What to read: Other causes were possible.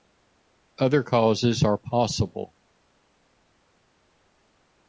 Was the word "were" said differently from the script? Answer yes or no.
yes